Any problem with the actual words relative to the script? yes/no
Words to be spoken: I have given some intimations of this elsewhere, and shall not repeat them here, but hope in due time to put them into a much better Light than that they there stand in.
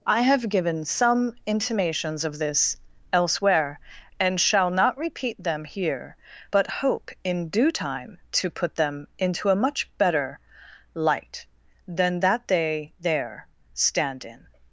no